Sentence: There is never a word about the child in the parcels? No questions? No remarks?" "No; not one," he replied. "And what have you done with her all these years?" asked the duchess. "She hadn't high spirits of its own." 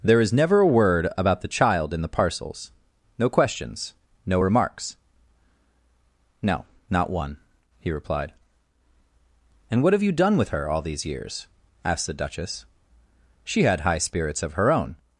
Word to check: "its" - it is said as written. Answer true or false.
false